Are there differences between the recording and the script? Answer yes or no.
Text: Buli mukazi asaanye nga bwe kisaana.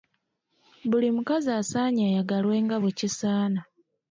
yes